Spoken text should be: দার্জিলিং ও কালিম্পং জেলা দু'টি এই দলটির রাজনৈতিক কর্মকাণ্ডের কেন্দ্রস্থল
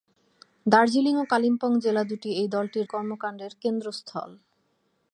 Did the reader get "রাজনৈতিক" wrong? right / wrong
wrong